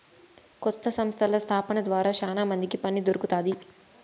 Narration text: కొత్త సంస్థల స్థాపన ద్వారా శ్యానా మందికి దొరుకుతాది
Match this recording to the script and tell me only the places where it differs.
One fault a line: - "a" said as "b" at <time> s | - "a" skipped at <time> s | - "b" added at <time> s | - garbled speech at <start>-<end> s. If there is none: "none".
- "పని" added at 2.8 s